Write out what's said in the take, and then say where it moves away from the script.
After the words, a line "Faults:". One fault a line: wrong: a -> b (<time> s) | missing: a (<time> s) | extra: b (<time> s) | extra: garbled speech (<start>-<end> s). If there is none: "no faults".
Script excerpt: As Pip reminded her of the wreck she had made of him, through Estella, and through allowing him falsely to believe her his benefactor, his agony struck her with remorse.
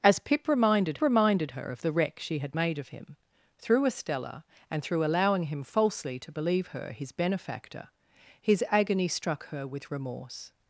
As Pip reminded reminded her of the wreck she had made of him, through Estella, and through allowing him falsely to believe her his benefactor, his agony struck her with remorse.
Faults:
extra: reminded (1.0 s)